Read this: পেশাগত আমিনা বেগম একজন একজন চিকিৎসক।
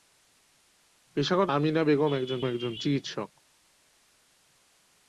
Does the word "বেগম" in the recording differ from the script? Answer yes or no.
no